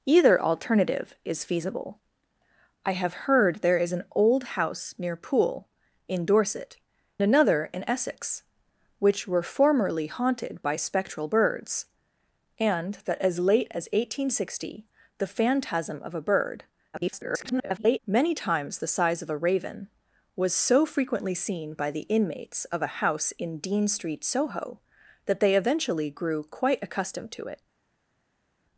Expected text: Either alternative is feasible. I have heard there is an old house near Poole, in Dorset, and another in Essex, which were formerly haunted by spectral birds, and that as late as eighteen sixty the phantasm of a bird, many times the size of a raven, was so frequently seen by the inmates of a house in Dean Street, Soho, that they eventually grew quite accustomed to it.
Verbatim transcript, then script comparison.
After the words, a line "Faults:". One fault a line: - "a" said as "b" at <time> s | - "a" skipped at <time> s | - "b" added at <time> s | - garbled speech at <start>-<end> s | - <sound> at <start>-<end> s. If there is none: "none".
Either alternative is feasible. I have heard there is an old house near Poole, in Dorset, another in Essex, which were formerly haunted by spectral birds, and that as late as eighteen sixty the phantasm of a bird, [garbled] many times the size of a raven, was so frequently seen by the inmates of a house in Dean Street, Soho, that they eventually grew quite accustomed to it.
Faults:
- "and" skipped at 6.8 s
- garbled speech at 16.9-18.0 s